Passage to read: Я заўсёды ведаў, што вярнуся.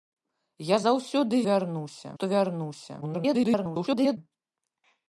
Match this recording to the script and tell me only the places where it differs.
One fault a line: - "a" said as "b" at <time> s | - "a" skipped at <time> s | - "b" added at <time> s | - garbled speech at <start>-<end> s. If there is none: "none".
- "ведаў" said as "вярнуся" at 1.5 s
- garbled speech at 3.0-4.2 s